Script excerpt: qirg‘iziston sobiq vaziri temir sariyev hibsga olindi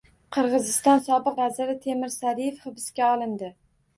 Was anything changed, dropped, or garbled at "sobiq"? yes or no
no